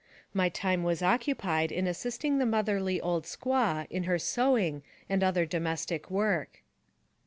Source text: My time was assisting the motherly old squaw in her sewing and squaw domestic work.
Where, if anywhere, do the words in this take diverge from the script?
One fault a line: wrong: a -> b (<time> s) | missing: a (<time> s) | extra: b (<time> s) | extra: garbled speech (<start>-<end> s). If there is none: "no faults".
extra: occupied in (1.0 s)
wrong: squaw -> other (5.2 s)